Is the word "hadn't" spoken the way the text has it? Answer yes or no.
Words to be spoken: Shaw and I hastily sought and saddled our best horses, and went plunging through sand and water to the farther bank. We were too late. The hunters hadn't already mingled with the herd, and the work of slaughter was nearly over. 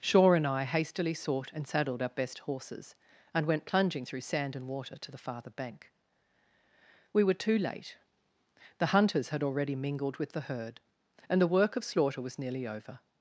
no